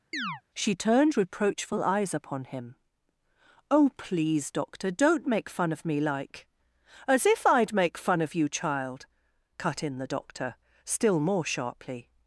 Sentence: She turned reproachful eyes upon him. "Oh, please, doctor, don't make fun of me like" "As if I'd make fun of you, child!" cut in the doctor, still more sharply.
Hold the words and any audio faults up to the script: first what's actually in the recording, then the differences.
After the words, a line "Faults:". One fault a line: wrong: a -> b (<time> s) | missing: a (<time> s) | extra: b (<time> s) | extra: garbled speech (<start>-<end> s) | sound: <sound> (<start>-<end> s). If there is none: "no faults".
She turned reproachful eyes upon him. "Oh, please, doctor, don't make fun of me like" "As if I'd make fun of you, child!" cut in the doctor, still more sharply.
Faults:
sound: chirp (0.1-0.4 s)